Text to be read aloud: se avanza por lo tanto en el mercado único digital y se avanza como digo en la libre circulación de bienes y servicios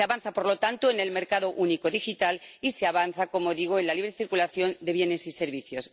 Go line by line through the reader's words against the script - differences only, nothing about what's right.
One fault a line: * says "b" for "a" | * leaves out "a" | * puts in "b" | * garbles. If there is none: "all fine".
all fine